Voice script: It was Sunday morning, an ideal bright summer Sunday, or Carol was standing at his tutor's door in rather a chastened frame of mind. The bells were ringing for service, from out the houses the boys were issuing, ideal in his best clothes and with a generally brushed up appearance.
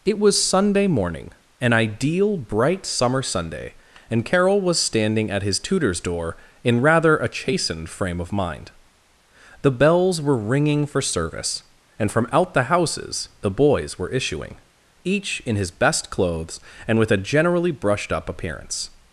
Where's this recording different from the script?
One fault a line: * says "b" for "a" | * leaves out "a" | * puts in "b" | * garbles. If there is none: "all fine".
* says "and" for "or"
* puts in "and"
* says "each" for "ideal"